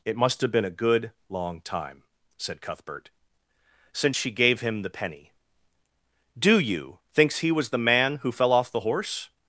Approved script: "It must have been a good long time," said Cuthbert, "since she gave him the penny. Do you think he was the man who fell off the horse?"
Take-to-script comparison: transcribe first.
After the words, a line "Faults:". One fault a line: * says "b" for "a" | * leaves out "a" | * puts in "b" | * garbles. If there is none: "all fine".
"It must have been a good long time," said Cuthbert, "since she gave him the penny. Do you thinks he was the man who fell off the horse?"
Faults:
* says "thinks" for "think"